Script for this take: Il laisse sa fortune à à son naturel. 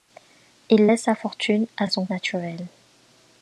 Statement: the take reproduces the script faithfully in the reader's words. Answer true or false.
true